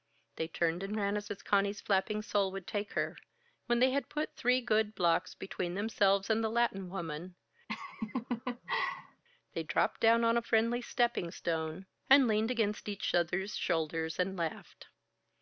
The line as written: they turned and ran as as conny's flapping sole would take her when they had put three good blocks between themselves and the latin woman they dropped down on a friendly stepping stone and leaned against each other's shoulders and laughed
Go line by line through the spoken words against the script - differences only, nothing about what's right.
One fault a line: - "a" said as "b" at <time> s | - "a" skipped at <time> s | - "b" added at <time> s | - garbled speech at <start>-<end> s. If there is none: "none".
none